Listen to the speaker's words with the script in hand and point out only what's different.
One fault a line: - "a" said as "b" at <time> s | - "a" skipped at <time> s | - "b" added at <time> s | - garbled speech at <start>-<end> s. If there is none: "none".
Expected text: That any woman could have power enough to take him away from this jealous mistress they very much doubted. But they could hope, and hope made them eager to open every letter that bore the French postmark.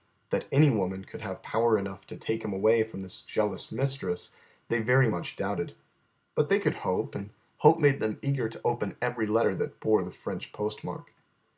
none